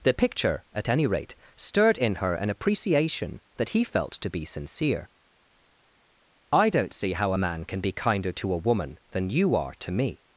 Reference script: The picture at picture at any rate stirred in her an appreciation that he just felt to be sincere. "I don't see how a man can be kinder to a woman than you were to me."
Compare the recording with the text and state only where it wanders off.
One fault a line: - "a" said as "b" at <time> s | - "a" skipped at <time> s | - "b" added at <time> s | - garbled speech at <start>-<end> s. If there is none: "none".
- "picture at" skipped at 0.9 s
- "just" skipped at 3.8 s
- "were" said as "are" at 9.6 s